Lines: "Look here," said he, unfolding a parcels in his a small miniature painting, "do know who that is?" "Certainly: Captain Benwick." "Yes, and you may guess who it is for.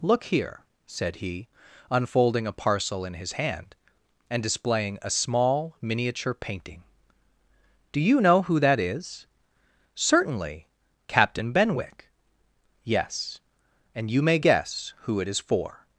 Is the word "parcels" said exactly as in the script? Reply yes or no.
no